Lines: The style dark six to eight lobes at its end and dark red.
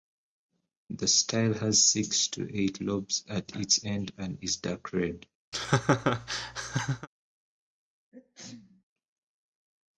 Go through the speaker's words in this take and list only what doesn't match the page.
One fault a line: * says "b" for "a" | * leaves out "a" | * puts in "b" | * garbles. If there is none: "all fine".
* says "has" for "dark"
* puts in "is"